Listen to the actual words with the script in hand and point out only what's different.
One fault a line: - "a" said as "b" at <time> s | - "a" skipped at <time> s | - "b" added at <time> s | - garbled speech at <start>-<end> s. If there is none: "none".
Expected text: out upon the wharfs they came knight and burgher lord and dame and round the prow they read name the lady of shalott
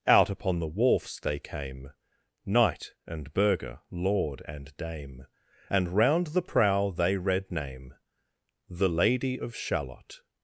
none